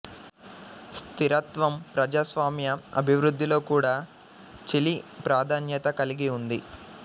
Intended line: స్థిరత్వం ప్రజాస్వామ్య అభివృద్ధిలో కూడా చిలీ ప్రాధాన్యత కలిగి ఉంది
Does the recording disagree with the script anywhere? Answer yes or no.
no